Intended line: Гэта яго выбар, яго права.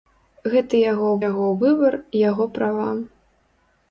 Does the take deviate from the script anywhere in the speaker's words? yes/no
yes